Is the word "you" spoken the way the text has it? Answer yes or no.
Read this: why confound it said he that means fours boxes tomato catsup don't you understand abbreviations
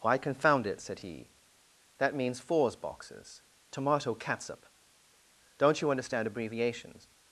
yes